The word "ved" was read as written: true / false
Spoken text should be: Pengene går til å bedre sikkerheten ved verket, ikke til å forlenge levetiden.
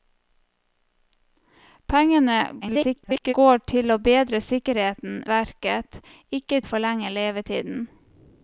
false